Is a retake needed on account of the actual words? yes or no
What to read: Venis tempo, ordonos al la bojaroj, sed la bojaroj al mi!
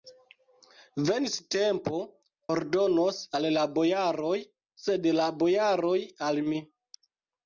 no